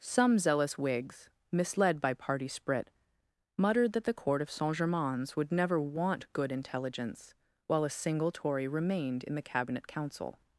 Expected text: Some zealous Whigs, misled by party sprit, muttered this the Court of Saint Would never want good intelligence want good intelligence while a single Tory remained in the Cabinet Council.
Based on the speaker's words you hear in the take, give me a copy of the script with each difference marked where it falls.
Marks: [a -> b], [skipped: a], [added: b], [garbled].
Some zealous Whigs, misled by party sprit, muttered [this -> that] the Court of Saint [added: Germains] Would never want good intelligence [skipped: want good intelligence] while a single Tory remained in the Cabinet Council.